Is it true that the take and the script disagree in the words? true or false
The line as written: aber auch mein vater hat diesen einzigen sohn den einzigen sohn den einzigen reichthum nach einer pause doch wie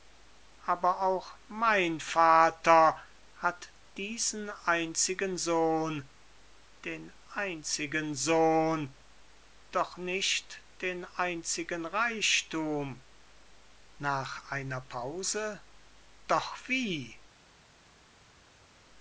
true